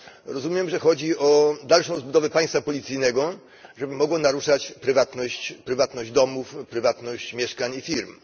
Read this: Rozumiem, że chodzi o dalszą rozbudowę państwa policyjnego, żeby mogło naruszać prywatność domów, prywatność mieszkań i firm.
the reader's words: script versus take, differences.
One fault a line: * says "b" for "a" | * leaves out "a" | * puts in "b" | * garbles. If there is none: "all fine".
all fine